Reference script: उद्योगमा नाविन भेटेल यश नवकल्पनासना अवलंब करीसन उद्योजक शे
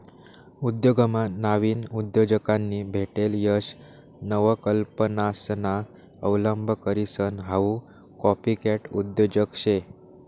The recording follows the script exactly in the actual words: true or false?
false